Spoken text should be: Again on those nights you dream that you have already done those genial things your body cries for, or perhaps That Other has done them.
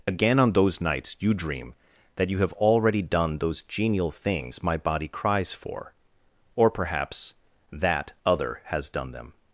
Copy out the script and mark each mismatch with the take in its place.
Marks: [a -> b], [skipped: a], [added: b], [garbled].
Again on those nights you dream that you have already done those genial things [your -> my] body cries for, or perhaps That Other has done them.